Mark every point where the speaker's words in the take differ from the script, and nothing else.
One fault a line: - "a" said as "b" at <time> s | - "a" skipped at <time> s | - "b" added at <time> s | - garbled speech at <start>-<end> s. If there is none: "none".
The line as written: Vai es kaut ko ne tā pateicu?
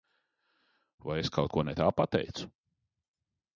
none